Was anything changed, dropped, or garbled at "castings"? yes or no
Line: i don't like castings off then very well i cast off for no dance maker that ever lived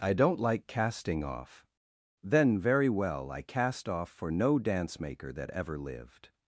yes